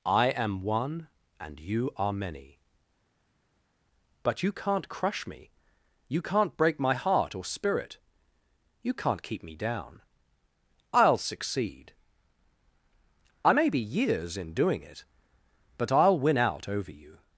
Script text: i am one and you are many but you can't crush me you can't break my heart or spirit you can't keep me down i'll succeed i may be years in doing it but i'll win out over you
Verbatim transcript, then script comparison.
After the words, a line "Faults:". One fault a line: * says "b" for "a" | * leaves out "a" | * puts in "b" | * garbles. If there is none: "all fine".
i am one and you are many but you can't crush me you can't break my heart or spirit you can't keep me down i'll succeed i may be years in doing it but i'll win out over you
Faults:
all fine